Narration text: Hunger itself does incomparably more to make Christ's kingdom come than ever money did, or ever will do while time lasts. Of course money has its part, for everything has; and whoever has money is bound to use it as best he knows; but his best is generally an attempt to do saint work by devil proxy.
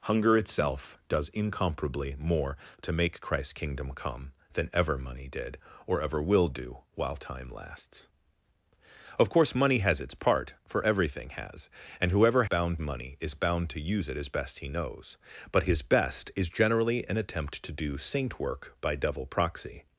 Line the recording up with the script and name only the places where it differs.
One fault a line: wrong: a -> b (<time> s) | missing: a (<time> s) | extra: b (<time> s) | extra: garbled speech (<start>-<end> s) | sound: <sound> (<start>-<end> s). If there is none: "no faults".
wrong: has -> bound (12.4 s)